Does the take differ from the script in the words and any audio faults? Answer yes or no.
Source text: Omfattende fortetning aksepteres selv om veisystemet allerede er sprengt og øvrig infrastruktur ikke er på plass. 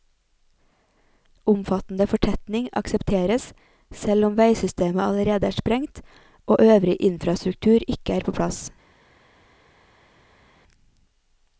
no